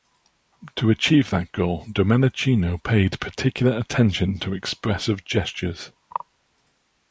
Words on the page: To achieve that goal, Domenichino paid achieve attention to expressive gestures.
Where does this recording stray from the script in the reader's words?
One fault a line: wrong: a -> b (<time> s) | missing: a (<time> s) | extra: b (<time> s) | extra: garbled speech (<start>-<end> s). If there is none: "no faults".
wrong: achieve -> particular (3.2 s)